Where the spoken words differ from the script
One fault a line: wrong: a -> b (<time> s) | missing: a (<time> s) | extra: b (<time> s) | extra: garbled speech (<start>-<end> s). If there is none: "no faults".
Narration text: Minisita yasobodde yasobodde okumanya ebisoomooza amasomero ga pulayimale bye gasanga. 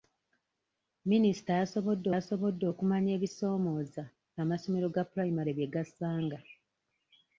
no faults